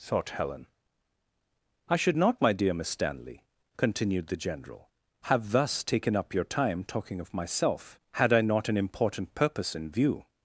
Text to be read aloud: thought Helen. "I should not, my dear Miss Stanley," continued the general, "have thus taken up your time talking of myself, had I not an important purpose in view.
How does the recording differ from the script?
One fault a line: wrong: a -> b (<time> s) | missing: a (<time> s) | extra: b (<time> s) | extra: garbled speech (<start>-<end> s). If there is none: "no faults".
no faults